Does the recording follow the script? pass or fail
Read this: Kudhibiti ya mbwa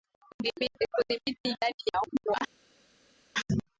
fail